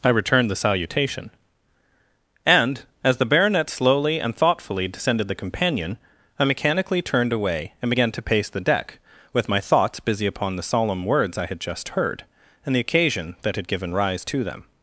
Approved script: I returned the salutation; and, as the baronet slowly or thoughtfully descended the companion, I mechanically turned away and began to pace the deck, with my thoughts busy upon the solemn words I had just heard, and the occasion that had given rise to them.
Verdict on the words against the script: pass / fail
fail